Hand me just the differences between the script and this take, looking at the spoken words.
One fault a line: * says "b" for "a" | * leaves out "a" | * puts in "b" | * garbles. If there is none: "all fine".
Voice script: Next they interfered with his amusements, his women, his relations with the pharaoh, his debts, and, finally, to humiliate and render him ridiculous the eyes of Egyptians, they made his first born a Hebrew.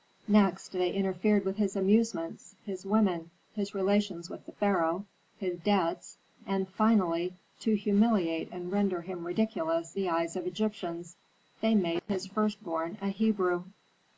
all fine